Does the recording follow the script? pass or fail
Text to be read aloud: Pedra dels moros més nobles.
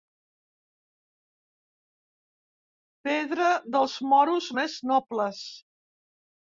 pass